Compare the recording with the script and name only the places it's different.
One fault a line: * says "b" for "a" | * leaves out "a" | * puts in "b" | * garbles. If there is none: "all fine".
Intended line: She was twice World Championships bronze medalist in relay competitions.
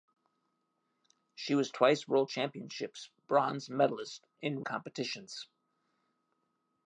* leaves out "relay"